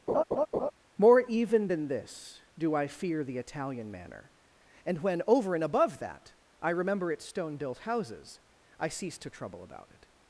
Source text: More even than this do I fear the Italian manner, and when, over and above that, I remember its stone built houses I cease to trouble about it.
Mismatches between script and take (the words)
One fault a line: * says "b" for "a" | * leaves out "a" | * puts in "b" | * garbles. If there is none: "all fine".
all fine